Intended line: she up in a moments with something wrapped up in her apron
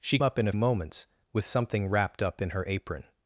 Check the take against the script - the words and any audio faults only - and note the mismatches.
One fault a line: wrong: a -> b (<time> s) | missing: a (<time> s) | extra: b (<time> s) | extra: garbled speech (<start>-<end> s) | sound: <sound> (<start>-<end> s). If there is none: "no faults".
no faults